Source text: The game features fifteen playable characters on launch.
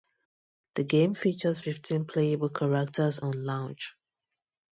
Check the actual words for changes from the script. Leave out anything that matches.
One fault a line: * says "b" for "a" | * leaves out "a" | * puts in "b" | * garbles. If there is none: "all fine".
all fine